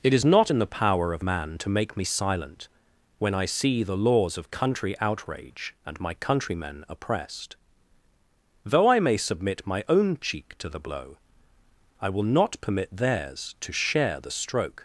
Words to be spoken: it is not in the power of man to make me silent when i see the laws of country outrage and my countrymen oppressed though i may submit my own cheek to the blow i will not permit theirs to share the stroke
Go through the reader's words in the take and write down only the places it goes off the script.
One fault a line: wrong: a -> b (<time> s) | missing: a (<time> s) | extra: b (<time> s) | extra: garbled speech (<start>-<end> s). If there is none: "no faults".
no faults